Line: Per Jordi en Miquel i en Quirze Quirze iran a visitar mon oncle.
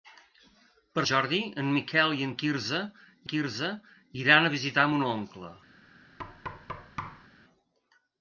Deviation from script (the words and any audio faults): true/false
true